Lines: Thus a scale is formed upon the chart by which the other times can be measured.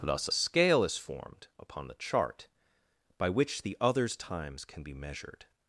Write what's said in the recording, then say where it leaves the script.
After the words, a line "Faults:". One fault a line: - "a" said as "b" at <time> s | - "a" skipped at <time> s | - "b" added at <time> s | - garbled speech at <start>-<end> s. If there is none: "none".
Thus a scale is formed upon the chart by which the others times can be measured.
Faults:
- "other" said as "others" at 3.8 s